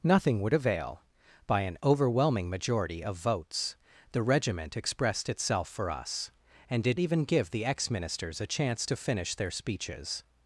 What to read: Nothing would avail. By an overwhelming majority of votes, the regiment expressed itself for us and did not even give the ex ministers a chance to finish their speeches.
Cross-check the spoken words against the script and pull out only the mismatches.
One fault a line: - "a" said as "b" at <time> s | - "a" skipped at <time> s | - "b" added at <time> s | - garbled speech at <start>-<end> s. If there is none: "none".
- "not" skipped at 7.0 s